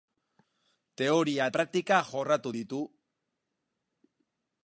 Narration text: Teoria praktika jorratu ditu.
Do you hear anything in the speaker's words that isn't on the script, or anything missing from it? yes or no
no